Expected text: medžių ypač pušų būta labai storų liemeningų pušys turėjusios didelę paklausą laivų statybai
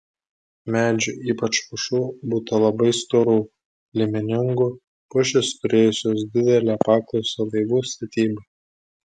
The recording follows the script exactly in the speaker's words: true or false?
true